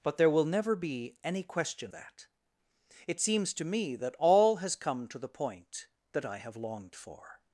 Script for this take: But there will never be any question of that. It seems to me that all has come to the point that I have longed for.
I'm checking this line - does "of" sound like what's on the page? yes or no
no